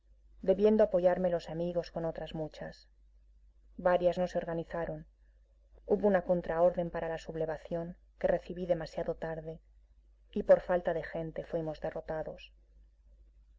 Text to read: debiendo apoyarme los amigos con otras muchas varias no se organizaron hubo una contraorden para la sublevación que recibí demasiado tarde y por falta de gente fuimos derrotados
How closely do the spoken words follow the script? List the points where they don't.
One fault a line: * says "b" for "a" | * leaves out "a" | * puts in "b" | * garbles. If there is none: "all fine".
all fine